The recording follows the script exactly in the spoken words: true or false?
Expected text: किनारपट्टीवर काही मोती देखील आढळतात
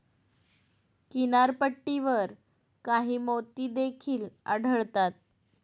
true